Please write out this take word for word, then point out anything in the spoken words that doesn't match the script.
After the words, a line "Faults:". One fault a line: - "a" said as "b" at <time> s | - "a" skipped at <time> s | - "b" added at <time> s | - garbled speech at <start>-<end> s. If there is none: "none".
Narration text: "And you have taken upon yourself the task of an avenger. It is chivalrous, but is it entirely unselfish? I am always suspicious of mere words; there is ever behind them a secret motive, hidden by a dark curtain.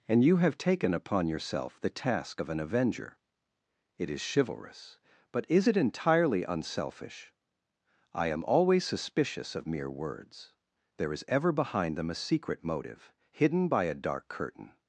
"And you have taken upon yourself the task of an avenger. It is chivalrous, but is it entirely unselfish? I am always suspicious of mere words; there is ever behind them a secret motive, hidden by a dark curtain.
Faults:
none